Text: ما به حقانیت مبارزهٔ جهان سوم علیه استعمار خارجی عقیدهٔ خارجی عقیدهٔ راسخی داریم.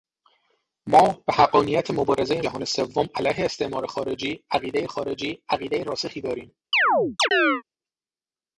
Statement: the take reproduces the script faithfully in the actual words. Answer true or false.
true